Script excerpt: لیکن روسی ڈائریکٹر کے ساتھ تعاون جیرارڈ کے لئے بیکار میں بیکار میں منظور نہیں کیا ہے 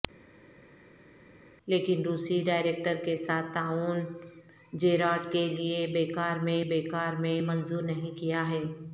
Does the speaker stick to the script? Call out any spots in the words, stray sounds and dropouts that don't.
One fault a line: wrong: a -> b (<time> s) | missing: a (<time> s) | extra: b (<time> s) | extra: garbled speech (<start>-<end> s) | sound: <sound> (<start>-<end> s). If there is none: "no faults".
no faults